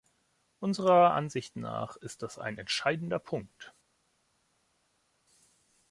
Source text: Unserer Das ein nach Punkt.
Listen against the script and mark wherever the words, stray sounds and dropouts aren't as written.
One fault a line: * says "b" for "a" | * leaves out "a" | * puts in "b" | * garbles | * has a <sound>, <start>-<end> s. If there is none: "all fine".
* puts in "Ansicht nach ist"
* says "entscheidender" for "nach"